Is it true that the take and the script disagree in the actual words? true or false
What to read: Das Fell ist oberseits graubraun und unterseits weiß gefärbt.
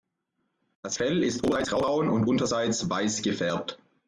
false